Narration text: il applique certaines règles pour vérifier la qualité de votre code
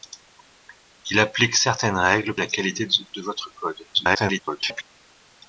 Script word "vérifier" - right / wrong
wrong